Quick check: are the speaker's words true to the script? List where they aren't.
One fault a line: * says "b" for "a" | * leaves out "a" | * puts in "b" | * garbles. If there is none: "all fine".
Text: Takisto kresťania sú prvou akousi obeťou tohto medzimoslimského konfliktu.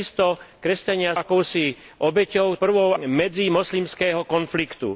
* leaves out "sú prvou"
* says "prvou" for "tohto"